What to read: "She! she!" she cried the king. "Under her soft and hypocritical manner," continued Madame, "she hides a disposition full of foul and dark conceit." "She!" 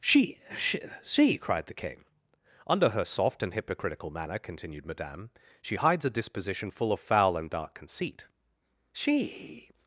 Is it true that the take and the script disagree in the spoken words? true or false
false